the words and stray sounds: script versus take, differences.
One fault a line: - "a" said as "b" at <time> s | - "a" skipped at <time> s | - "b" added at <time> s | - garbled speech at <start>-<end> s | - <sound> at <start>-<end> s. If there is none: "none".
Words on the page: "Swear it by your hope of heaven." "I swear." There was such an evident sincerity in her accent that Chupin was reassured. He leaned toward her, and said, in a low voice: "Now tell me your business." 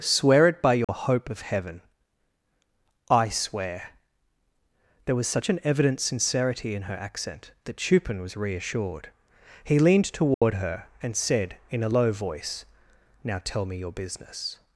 - dropout at 0.8-0.9 s
- dropout at 10.3-10.4 s